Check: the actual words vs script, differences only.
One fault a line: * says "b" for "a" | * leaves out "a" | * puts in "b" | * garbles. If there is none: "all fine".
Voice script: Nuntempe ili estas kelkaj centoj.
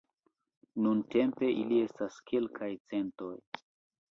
all fine